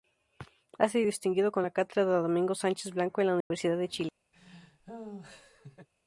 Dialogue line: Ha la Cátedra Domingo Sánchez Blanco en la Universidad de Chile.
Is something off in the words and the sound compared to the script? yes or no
yes